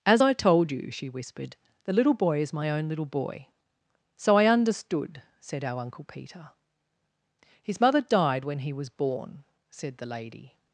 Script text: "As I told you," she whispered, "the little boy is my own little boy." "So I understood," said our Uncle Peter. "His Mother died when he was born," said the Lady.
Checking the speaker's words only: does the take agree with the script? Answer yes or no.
yes